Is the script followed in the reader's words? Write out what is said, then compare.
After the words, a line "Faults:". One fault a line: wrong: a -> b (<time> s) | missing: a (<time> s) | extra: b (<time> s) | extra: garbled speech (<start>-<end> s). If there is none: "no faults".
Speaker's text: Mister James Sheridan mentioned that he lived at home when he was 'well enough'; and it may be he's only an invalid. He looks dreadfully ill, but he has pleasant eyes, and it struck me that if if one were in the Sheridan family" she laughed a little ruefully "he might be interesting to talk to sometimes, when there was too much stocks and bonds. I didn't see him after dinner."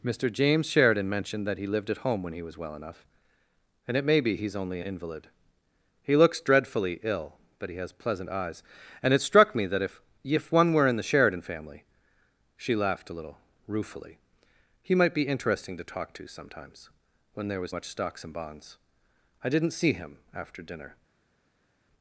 Mister James Sheridan mentioned that he lived at home when he was 'well enough'; and it may be he's only invalid. He looks dreadfully ill, but he has pleasant eyes, and it struck me that if if one were in the Sheridan family" she laughed a little ruefully "he might be interesting to talk to sometimes, when there was much stocks and bonds. I didn't see him after dinner."
Faults:
missing: an (4.8 s)
missing: too (17.7 s)